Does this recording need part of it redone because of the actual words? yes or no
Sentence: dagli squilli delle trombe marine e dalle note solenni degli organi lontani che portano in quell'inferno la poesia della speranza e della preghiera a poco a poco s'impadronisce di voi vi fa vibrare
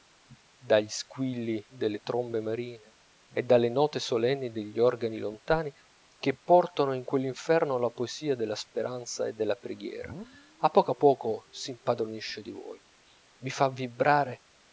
no